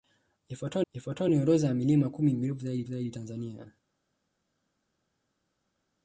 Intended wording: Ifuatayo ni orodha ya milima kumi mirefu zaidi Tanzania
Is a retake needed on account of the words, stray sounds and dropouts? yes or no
yes